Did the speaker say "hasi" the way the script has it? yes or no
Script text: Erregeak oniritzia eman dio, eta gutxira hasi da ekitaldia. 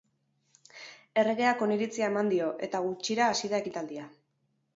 yes